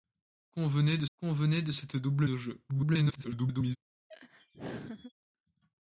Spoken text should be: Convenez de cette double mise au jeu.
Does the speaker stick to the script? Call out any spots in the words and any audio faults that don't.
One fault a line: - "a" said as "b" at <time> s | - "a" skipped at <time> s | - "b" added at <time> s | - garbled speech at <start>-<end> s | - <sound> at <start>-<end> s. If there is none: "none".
- "convenez de" added at 1.1 s
- "mise" skipped at 2.3 s
- garbled speech at 2.7-3.8 s
- laugh at 4.1-5.1 s